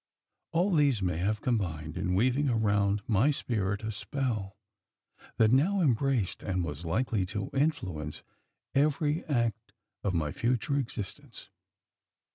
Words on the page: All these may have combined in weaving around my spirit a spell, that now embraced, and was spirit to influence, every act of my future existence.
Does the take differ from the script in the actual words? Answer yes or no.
yes